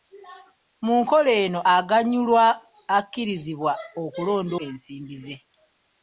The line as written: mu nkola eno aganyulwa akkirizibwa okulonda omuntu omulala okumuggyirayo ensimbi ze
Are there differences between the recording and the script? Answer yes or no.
yes